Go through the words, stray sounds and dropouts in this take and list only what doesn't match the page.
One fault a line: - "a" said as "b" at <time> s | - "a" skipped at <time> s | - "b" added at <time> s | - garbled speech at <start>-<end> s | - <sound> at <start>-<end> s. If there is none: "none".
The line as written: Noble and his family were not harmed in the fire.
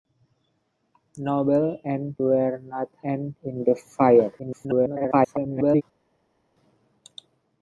- "his family" skipped at 2.1 s
- "harmed" said as "and" at 3.0 s
- garbled speech at 4.4-5.8 s